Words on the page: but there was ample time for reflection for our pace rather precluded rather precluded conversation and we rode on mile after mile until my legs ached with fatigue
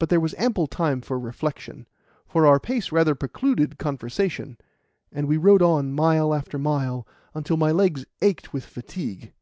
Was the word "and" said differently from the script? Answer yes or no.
no